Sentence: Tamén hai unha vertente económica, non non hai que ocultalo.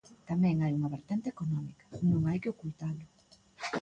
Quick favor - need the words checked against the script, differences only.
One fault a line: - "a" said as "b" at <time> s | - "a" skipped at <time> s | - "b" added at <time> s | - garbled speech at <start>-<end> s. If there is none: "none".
- "non" skipped at 2.2 s